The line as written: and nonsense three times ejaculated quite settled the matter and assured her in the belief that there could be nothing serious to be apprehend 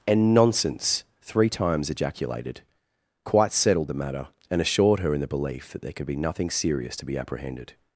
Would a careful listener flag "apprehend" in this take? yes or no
yes